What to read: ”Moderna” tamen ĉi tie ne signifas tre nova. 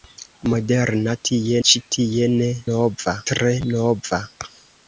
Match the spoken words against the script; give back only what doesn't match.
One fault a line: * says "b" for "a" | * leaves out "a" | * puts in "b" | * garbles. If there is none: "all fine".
* says "tie" for "tamen"
* says "nova" for "signifas"